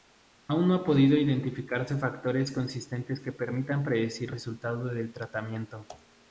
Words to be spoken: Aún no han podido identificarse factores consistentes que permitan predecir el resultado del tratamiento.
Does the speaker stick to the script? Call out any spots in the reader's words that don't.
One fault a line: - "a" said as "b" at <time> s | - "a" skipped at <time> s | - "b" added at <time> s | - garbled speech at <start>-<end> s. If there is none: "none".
- "el" skipped at 4.3 s